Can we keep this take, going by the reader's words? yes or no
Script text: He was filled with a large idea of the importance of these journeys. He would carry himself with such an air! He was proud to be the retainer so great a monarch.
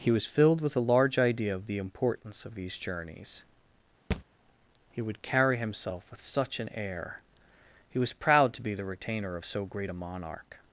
no